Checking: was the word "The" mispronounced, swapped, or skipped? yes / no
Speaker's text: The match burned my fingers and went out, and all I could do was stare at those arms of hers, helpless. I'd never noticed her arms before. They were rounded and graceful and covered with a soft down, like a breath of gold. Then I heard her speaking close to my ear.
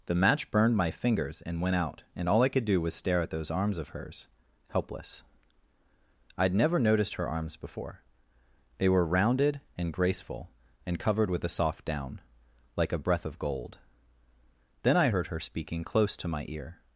no